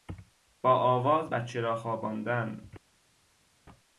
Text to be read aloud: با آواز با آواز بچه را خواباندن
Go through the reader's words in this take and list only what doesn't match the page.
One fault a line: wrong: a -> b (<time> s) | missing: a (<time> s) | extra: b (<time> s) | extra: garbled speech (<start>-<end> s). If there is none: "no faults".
missing: با آواز (1.3 s)